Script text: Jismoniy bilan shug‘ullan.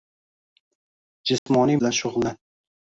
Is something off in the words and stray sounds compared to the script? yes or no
yes